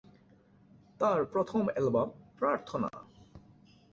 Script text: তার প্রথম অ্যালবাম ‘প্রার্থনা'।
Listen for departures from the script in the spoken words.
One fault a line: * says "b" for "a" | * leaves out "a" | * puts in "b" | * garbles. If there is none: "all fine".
all fine